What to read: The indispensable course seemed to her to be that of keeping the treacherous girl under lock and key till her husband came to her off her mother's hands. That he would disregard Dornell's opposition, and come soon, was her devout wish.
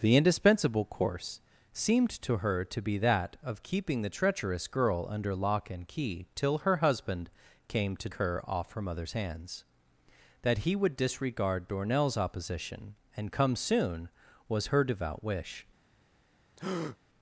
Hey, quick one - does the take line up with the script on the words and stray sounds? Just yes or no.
no